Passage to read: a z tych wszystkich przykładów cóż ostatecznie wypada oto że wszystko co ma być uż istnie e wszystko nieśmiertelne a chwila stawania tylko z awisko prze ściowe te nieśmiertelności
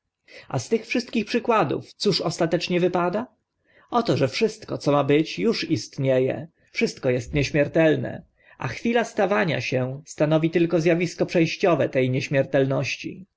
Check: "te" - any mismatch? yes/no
no